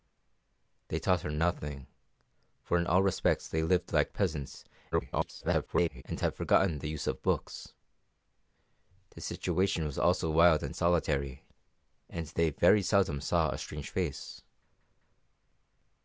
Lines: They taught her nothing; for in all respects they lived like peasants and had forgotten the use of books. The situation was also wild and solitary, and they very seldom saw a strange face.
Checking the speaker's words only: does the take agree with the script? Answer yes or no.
no